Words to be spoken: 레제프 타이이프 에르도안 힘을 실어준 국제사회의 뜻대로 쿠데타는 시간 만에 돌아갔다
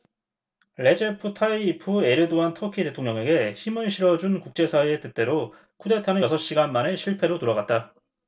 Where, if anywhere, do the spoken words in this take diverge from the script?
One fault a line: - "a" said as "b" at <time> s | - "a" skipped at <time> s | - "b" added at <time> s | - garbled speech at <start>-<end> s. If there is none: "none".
- "터키 대통령에게" added at 2.5 s
- "여섯" added at 6.2 s
- "실패로" added at 7.0 s